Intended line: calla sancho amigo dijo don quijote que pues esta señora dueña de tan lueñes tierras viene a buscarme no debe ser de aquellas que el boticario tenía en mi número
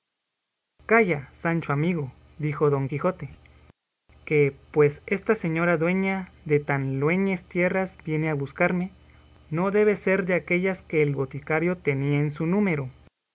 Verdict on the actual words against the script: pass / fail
fail